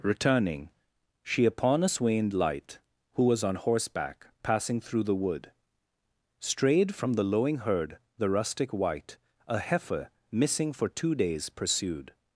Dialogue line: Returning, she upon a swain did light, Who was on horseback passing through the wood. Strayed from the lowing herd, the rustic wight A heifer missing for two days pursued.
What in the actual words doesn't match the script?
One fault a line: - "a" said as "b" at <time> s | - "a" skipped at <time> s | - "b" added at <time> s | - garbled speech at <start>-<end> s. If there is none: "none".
- "did" skipped at 2.3 s